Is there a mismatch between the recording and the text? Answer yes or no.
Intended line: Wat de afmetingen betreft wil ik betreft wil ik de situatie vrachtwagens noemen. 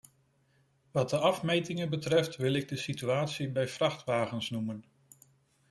yes